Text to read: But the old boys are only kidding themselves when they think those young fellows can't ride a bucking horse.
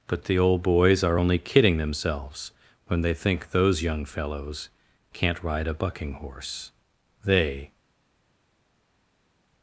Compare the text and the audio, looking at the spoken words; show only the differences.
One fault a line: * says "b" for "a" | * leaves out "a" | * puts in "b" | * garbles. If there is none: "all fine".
* puts in "They"